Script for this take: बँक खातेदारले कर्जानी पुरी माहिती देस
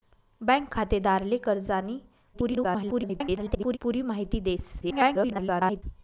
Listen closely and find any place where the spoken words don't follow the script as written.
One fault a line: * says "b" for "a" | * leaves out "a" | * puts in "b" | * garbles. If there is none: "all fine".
* garbles
* garbles